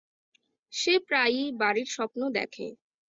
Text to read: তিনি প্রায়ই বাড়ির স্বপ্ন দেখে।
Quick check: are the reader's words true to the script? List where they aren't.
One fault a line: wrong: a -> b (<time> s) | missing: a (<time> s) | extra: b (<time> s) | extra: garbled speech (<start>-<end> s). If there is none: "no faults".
wrong: তিনি -> সে (0.7 s)